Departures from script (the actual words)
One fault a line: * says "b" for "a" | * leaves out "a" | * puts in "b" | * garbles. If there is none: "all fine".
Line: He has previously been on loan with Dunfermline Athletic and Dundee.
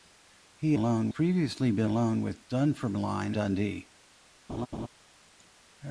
* says "loan" for "has"
* leaves out "on"
* leaves out "Athletic and"